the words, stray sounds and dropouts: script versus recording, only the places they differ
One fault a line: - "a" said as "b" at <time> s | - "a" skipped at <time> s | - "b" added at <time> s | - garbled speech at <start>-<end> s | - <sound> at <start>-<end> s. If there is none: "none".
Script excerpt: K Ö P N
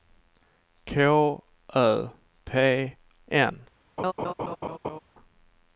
- laugh at 4.0-5.0 s